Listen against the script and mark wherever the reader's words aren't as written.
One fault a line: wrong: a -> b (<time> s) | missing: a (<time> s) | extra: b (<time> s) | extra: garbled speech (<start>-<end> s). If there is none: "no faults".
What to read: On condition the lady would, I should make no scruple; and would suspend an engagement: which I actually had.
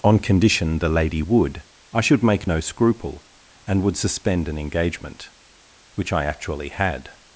no faults